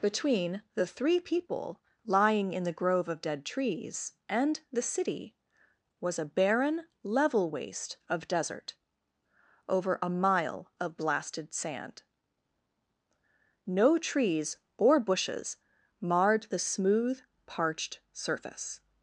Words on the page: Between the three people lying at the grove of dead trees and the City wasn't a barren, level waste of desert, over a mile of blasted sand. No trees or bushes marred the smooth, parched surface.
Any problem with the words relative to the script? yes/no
yes